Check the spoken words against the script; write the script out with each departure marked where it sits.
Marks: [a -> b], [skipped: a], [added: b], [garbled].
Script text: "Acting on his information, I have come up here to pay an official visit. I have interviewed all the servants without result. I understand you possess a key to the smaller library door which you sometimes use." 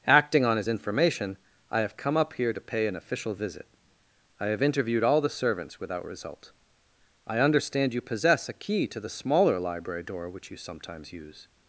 "Acting on his information, I have come up here to pay an official visit. I have interviewed all the servants without result. I understand you possess a key to the smaller library door which you sometimes use."